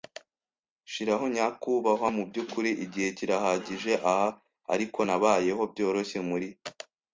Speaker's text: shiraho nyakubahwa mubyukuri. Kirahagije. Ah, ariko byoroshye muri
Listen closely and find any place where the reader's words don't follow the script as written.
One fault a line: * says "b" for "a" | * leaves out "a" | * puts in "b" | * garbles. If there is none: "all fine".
* puts in "Igihe"
* puts in "nabayeho"